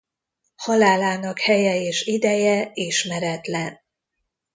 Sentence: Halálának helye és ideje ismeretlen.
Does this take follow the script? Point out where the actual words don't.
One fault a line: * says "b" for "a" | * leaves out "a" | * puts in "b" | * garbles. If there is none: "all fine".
all fine